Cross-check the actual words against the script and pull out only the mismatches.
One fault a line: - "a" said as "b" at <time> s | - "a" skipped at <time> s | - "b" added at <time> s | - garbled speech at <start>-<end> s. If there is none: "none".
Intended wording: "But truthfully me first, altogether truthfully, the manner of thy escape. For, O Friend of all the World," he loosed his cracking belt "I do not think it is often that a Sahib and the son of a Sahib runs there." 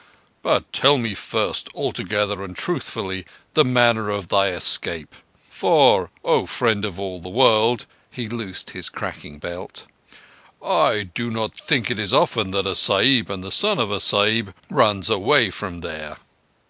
- "truthfully" said as "tell" at 0.7 s
- "and" added at 2.4 s
- "away from" added at 15.1 s